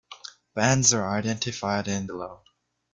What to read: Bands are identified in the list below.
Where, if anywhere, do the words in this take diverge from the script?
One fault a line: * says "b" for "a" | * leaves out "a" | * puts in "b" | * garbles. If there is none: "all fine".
* leaves out "the list"